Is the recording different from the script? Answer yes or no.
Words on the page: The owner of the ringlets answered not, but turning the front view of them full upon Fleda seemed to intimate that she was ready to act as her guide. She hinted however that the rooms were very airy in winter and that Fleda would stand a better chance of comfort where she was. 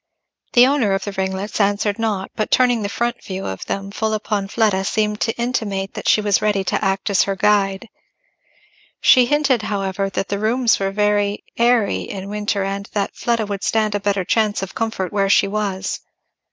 no